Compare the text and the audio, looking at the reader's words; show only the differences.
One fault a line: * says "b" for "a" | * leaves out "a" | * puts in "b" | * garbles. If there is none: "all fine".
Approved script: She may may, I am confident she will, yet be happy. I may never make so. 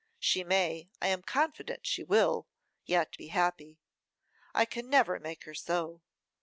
* leaves out "may"
* says "can" for "may"
* puts in "her"